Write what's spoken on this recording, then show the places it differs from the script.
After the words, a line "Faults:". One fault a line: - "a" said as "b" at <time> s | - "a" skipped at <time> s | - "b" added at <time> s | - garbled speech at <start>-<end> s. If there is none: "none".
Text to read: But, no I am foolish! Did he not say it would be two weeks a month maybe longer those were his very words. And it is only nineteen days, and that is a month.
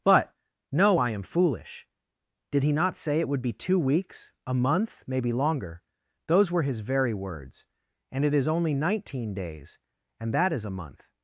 But, no I am foolish! Did he not say it would be two weeks a month maybe longer those were his very words. And it is only nineteen days, and that is a month.
Faults:
none